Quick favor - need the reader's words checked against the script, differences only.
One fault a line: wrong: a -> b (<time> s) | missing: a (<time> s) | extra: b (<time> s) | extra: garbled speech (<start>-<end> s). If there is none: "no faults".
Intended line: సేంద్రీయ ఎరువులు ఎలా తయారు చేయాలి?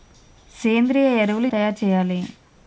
missing: ఎలా (1.5 s)